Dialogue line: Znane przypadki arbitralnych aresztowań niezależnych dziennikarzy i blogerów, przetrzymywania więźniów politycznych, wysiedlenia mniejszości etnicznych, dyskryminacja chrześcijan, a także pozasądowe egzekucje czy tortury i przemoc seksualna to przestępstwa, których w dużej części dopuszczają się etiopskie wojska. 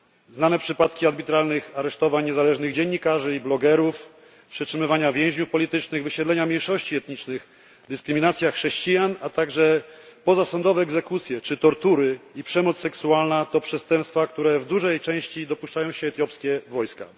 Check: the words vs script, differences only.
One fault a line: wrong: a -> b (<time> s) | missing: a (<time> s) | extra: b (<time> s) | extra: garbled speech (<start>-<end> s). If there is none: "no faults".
no faults